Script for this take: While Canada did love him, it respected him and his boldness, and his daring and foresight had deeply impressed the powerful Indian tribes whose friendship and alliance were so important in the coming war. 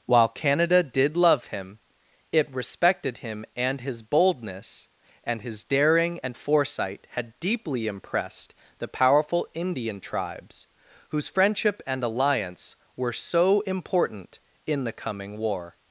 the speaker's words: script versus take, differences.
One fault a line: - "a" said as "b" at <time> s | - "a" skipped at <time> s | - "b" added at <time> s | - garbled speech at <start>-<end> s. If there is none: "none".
none